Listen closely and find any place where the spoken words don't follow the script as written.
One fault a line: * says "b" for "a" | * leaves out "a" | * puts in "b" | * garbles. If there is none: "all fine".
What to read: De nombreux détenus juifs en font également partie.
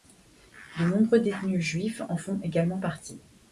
all fine